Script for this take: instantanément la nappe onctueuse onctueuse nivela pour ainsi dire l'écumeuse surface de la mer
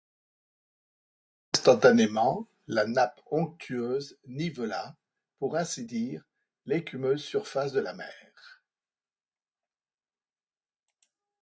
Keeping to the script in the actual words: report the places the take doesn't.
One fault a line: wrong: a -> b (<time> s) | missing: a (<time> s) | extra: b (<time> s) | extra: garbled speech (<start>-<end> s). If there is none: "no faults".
missing: onctueuse (4.2 s)